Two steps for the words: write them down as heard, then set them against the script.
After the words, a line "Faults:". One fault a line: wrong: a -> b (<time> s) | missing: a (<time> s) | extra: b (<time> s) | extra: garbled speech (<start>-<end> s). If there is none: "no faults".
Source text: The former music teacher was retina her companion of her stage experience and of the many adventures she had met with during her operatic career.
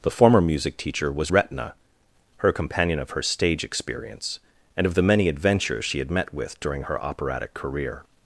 The former music teacher was retina her companion of her stage experience and of the many adventures she had met with during her operatic career.
Faults:
no faults